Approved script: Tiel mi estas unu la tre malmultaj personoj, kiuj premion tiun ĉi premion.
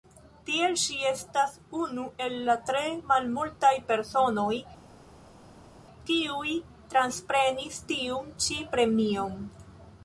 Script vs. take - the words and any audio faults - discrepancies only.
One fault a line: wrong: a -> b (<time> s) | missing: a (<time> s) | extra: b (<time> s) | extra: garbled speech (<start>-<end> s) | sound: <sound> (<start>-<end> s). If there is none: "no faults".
wrong: mi -> ŝi (0.8 s)
extra: el (2.3 s)
wrong: premion -> transprenis (6.9 s)